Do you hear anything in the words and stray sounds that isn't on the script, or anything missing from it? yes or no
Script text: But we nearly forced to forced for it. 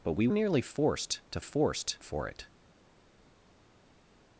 no